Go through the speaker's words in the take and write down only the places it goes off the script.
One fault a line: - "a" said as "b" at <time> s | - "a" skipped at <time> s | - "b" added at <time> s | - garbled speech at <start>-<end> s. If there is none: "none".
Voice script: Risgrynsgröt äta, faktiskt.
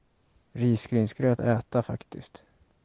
none